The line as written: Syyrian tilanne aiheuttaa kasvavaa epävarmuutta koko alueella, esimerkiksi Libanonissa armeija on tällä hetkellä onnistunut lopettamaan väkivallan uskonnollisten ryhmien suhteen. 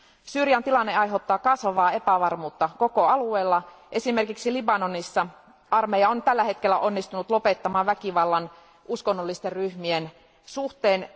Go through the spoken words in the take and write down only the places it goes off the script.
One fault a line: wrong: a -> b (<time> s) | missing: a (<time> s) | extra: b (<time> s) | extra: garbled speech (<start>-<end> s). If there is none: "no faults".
no faults